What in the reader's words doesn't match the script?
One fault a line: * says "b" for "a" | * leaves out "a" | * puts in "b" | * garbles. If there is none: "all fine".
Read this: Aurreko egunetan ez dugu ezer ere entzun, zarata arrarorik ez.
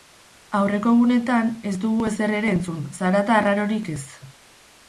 all fine